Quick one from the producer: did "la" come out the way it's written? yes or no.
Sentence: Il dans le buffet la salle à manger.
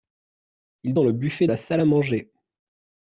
yes